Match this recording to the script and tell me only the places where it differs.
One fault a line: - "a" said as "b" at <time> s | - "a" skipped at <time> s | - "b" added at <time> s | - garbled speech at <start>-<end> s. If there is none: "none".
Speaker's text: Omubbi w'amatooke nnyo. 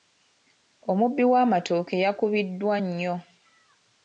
- "yakubiddwa" added at 2.0 s